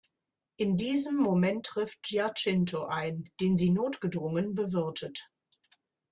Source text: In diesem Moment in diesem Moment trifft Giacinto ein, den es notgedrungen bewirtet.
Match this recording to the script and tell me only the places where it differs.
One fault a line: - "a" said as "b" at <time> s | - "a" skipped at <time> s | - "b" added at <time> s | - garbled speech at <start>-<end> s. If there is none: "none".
- "in diesem Moment" skipped at 1.7 s
- "es" said as "sie" at 3.6 s